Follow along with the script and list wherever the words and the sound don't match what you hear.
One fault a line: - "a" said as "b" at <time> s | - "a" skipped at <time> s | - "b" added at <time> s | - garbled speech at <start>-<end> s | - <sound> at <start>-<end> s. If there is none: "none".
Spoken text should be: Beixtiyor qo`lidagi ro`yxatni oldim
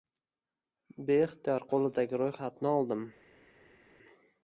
none